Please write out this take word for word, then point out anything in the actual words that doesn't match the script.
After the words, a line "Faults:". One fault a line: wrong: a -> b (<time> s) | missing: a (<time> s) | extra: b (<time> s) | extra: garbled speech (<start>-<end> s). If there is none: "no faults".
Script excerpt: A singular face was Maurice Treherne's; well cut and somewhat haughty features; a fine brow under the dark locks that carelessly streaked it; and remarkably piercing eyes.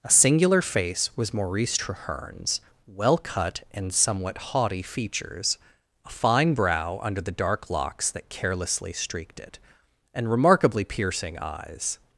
A singular face was Maurice Treherne's; well cut and somewhat haughty features; a fine brow under the dark locks that carelessly streaked it; and remarkably piercing eyes.
Faults:
no faults